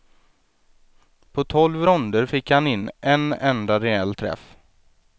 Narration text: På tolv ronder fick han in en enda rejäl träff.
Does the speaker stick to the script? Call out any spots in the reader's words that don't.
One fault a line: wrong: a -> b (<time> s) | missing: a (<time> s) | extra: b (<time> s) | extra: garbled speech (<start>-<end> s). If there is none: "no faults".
no faults